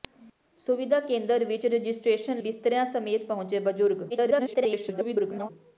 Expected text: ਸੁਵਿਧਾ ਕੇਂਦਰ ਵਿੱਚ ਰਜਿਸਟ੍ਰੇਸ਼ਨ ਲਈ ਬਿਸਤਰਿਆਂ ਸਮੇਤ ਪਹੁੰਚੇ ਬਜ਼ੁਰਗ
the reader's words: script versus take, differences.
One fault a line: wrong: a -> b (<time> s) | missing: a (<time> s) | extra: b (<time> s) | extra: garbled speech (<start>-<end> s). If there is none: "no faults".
missing: ਲਈ (2.4 s)
extra: garbled speech (4.1-5.5 s)